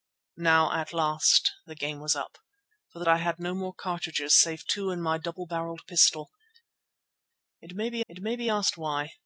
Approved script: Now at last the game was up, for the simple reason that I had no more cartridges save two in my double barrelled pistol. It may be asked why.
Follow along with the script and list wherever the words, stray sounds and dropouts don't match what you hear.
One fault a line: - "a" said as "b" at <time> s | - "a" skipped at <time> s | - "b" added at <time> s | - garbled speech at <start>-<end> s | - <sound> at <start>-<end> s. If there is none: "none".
- "simple reason that" skipped at 3.0 s
- "it may be" added at 8.1 s